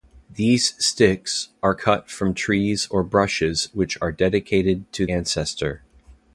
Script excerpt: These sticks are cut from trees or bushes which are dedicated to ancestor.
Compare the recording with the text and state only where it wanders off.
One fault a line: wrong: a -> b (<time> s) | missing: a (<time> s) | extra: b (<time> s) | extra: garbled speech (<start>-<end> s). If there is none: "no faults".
no faults